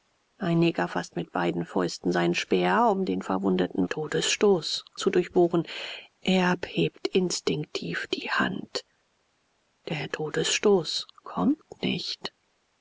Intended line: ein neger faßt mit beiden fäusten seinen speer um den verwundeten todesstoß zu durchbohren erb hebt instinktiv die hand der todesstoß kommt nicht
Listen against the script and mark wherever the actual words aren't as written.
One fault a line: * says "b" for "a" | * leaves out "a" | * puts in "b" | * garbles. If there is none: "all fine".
all fine